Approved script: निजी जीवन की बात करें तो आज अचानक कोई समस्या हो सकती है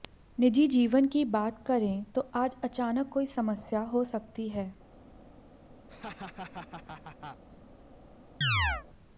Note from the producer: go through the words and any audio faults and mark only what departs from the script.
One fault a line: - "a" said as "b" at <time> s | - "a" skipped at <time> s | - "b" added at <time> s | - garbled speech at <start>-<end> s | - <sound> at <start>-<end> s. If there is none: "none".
- laugh at 5.9-7.4 s
- chirp at 8.4-8.9 s